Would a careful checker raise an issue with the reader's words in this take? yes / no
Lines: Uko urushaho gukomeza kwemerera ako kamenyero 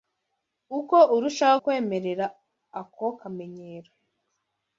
yes